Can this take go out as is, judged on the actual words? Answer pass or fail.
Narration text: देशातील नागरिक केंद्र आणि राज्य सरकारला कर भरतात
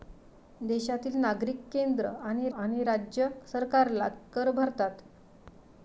fail